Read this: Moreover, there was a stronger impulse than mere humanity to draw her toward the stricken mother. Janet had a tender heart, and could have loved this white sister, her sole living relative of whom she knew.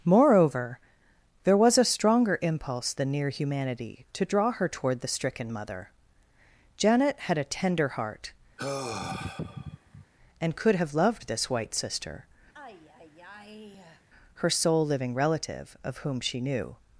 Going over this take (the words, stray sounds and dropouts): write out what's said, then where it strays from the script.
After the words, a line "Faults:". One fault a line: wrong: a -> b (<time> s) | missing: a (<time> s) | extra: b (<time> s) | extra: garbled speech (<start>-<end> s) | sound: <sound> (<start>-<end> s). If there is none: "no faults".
Moreover, there was a stronger impulse than near humanity to draw her toward the stricken mother. Janet had a tender heart, and could have loved this white sister, her sole living relative of whom she knew.
Faults:
wrong: mere -> near (3.1 s)
sound: sigh (8.6-10.1 s)
sound: sigh (12.5-14.1 s)